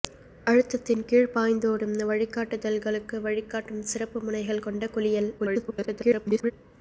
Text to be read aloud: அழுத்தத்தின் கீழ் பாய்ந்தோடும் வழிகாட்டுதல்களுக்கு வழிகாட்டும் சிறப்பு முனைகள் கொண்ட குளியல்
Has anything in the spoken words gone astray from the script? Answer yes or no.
yes